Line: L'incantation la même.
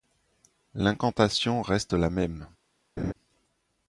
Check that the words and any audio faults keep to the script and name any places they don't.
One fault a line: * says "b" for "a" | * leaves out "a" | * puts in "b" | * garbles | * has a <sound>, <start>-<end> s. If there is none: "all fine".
* puts in "reste"
* has a laugh, 3.0-3.1 s